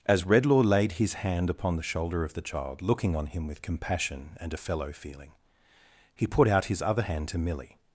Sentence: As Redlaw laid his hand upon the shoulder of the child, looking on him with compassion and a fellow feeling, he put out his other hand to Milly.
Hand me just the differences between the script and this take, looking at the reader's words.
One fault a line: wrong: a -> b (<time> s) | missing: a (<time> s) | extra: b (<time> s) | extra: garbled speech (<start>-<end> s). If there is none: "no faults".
no faults